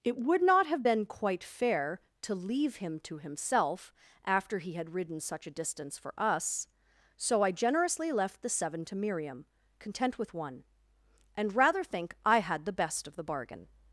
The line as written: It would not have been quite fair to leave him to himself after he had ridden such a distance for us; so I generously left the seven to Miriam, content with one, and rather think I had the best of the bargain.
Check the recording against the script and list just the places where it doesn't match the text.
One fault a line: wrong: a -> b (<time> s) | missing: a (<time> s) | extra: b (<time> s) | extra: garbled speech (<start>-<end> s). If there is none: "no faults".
no faults